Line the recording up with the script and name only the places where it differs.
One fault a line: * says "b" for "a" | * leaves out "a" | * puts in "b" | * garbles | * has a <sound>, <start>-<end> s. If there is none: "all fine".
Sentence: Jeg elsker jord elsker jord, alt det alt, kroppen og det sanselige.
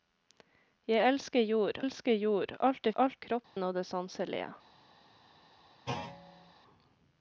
* has a dropout, 3.4-3.6 s
* has a thud, 5.9-6.5 s